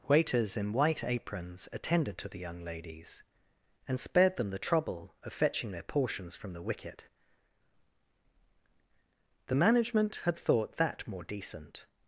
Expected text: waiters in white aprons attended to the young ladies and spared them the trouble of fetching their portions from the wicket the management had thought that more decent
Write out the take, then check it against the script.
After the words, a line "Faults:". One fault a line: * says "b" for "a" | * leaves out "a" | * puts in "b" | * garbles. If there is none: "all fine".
waiters in white aprons attended to the young ladies and spared them the trouble of fetching their portions from the wicket the management had thought that more decent
Faults:
all fine